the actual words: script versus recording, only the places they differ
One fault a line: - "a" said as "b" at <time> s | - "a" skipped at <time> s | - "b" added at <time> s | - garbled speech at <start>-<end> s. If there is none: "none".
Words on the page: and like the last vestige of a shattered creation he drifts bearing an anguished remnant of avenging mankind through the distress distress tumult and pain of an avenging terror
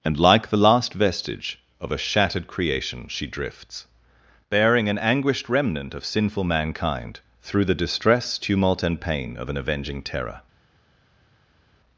- "he" said as "she" at 3.1 s
- "avenging" said as "sinful" at 6.0 s
- "distress" skipped at 8.4 s